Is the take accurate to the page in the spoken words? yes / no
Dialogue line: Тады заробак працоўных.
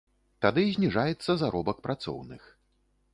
no